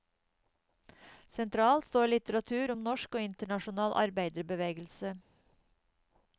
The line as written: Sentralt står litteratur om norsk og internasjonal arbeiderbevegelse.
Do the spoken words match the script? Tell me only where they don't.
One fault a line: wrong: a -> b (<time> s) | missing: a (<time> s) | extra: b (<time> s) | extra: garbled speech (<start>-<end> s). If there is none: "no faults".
no faults